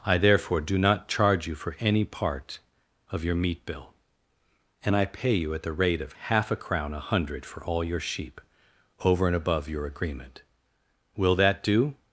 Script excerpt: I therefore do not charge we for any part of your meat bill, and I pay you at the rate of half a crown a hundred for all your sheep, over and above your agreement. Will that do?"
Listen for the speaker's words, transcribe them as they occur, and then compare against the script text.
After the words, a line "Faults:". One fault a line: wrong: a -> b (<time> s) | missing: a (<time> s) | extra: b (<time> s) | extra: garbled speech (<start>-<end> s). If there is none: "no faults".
I therefore do not charge you for any part of your meat bill, and I pay you at the rate of half a crown a hundred for all your sheep, over and above your agreement. Will that do?"
Faults:
wrong: we -> you (1.4 s)